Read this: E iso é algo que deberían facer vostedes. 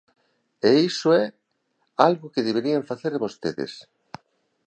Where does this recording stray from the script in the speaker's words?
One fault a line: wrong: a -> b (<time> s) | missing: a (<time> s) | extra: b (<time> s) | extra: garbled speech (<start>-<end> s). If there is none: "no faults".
no faults